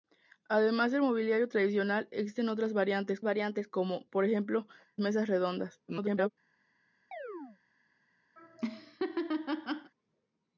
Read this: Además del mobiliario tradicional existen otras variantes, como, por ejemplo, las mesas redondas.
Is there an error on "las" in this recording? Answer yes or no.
yes